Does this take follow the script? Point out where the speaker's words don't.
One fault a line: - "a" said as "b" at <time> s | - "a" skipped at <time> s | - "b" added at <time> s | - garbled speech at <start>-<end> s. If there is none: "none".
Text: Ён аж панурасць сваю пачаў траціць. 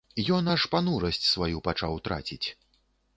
none